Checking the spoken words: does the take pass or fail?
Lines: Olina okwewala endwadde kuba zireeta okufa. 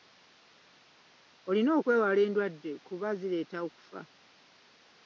pass